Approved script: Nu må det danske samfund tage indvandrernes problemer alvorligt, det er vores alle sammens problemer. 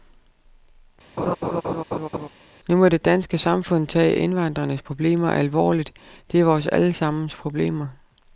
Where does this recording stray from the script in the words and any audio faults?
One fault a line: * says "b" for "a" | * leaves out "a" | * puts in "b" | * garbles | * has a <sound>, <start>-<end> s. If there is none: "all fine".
* has a laugh, 1.2-2.3 s